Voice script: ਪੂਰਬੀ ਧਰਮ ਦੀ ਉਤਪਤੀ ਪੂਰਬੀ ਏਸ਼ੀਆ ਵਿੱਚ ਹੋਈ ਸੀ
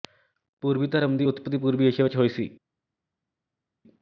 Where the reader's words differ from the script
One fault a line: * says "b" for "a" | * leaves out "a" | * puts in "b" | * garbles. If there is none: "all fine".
all fine